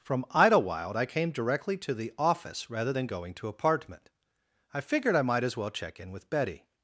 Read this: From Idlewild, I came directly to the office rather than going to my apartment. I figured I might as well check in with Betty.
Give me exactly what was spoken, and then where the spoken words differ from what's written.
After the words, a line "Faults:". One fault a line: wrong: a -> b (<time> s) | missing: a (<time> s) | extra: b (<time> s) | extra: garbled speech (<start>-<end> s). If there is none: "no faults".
From Idlewild, I came directly to the office rather than going to apartment. I figured I might as well check in with Betty.
Faults:
missing: my (3.5 s)